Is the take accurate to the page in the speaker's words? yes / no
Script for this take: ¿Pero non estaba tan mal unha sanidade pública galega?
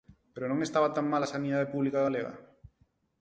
no